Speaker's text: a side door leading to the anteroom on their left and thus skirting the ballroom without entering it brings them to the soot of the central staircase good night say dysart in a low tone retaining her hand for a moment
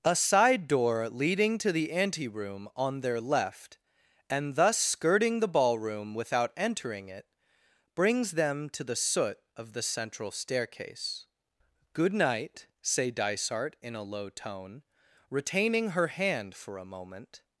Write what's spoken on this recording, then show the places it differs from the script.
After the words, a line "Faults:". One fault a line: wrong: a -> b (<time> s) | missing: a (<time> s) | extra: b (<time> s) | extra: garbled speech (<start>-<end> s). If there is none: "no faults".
a side door leading to the anteroom on their left and thus skirting the ballroom without entering it brings them to the soot of the central staircase good night say dysart in a low tone retaining her hand for a moment
Faults:
no faults